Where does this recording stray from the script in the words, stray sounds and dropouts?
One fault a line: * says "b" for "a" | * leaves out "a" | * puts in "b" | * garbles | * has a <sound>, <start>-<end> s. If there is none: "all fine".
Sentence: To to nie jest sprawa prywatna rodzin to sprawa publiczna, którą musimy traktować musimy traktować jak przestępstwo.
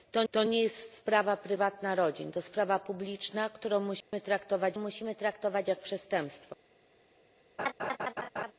* has a dropout, 4.0-4.1 s
* has a laugh, 7.6-8.5 s